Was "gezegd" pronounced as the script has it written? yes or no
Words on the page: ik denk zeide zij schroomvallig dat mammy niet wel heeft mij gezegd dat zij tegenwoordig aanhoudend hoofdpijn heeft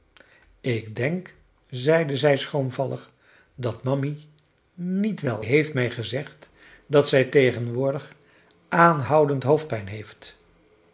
yes